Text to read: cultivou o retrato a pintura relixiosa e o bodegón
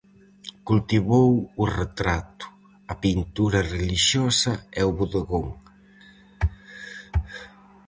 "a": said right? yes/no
yes